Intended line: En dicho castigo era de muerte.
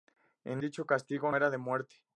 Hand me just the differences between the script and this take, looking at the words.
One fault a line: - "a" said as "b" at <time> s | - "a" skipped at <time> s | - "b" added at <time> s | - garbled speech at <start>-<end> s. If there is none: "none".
none